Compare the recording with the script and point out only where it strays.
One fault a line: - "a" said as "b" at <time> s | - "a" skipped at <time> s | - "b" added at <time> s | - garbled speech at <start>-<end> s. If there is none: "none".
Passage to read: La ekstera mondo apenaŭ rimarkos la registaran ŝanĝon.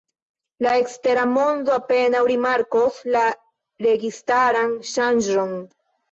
none